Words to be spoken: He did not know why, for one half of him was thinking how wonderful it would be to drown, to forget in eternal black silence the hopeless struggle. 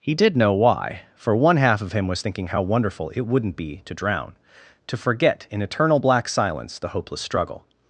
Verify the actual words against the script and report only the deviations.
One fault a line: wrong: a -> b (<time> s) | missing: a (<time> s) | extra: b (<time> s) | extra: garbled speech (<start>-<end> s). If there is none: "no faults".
missing: not (0.3 s)
wrong: would -> wouldn't (3.3 s)